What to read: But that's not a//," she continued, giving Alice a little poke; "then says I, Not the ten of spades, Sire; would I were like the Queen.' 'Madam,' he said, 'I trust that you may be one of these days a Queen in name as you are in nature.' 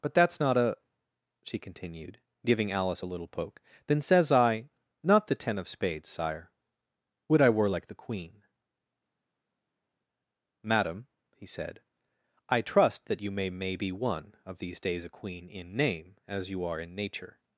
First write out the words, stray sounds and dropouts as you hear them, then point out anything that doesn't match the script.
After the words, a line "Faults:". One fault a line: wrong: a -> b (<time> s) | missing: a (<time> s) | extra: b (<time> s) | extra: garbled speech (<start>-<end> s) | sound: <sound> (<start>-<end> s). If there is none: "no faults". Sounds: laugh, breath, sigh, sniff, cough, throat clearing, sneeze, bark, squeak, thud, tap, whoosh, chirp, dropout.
But that's not a//," she continued, giving Alice a little poke; "then says I, Not the ten of spades, Sire; would I were like the Queen.' 'Madam,' he said, 'I trust that you may may be one of these days a Queen in name as you are in nature.'
Faults:
extra: may (13.5 s)